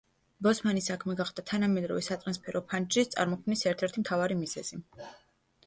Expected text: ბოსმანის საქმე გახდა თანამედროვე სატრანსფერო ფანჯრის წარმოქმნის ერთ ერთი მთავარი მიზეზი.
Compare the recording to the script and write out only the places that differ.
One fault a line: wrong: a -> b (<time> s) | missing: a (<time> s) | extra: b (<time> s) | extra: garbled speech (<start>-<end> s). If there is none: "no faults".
no faults